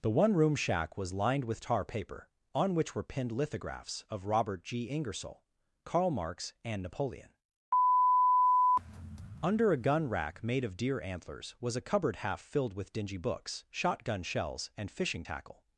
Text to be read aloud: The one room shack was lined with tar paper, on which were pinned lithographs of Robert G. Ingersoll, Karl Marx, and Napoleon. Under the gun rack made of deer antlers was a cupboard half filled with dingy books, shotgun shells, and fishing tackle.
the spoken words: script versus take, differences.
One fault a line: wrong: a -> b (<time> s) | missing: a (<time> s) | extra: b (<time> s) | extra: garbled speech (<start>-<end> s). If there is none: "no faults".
wrong: the -> a (9.7 s)